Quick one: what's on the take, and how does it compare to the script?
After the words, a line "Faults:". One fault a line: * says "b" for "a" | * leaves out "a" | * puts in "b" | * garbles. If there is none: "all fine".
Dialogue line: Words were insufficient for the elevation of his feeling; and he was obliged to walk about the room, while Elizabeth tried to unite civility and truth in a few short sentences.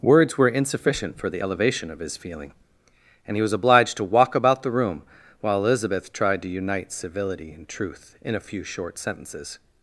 Words were insufficient for the elevation of his feeling; and he was obliged to walk about the room, while Elizabeth tried to unite civility and truth in a few short sentences.
Faults:
all fine